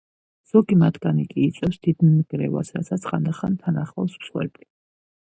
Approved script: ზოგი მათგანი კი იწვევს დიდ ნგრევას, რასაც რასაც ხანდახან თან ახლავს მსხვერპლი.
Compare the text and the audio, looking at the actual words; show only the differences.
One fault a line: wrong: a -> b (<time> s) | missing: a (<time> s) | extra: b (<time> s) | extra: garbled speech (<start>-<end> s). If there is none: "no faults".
missing: რასაც (3.0 s)